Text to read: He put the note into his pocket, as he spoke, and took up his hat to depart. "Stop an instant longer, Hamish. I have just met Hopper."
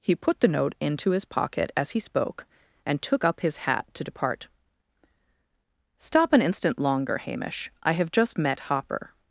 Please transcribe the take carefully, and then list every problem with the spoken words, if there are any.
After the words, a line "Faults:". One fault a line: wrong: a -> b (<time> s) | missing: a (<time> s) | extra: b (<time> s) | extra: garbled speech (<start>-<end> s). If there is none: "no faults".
He put the note into his pocket, as he spoke, and took up his hat to depart. "Stop an instant longer, Hamish. I have just met Hopper."
Faults:
no faults